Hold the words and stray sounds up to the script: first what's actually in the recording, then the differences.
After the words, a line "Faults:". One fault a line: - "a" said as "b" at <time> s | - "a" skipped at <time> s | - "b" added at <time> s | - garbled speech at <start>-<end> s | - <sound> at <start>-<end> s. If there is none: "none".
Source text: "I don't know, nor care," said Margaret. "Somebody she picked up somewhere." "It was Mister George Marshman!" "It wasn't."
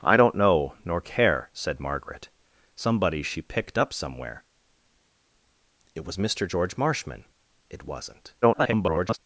"I don't know, nor care," said Margaret. "Somebody she picked up somewhere." "It was Mister George Marshman!" "It wasn't." [garbled]
Faults:
- garbled speech at 8.4-9.2 s